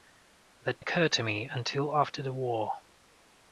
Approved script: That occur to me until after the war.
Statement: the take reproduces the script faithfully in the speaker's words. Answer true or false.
true